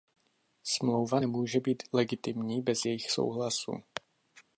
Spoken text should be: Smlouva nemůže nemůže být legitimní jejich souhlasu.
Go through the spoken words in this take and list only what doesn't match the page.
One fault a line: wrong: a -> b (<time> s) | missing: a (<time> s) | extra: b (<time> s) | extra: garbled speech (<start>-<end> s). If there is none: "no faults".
missing: nemůže (1.6 s)
extra: bez (2.6 s)